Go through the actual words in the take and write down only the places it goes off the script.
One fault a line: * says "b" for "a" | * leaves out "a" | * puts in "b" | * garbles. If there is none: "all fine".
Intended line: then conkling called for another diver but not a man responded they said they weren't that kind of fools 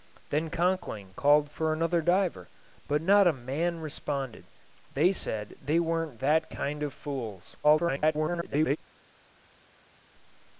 * garbles